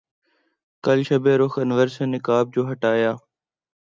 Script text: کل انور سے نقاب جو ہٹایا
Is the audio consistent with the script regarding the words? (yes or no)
no